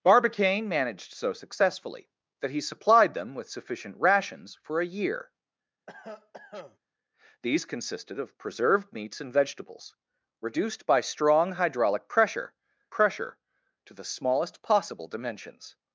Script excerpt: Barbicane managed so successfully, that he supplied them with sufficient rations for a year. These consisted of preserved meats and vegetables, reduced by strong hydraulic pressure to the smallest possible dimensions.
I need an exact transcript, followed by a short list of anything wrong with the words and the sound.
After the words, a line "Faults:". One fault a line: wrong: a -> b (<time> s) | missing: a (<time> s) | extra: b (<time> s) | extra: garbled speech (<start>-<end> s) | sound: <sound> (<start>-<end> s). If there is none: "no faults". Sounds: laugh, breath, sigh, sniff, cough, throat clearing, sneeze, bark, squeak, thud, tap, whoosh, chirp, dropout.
Barbicane managed so successfully, that he supplied them with sufficient rations for a year. These consisted of preserved meats and vegetables, reduced by strong hydraulic pressure pressure to the smallest possible dimensions.
Faults:
sound: cough (5.9-6.8 s)
extra: pressure (12.9 s)